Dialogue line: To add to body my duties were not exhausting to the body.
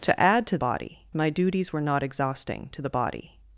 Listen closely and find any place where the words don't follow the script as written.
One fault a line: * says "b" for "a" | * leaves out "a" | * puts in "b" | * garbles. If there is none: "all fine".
all fine